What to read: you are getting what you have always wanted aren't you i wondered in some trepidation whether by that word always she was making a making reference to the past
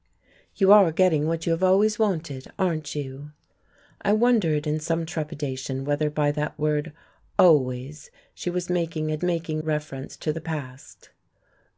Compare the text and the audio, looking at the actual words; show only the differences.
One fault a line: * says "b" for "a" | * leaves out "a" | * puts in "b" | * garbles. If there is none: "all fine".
all fine